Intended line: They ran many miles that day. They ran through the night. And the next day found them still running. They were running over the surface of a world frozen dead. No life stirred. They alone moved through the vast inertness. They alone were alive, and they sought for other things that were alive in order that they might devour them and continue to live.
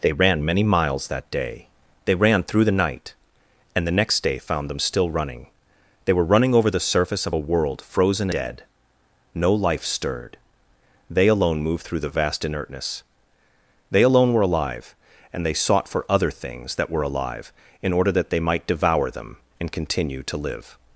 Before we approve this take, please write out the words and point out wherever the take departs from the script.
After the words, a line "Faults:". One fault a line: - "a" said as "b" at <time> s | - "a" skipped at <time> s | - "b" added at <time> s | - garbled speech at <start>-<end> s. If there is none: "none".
They ran many miles that day. They ran through the night. And the next day found them still running. They were running over the surface of a world frozen dead. No life stirred. They alone moved through the vast inertness. They alone were alive, and they sought for other things that were alive in order that they might devour them and continue to live.
Faults:
none